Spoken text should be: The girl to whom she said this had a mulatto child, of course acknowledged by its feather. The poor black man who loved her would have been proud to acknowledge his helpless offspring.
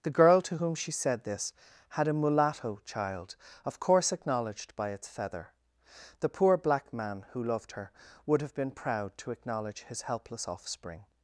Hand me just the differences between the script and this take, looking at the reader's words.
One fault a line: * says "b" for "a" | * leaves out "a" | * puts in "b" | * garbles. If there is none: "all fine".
all fine